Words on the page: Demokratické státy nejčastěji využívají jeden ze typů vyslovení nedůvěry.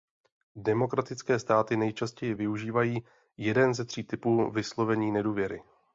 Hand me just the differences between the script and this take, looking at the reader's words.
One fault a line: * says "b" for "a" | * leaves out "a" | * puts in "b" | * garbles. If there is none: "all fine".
* puts in "tří"